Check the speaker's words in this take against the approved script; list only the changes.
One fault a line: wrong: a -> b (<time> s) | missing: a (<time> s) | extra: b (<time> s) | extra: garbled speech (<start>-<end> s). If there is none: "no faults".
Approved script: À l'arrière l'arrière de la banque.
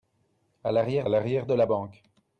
no faults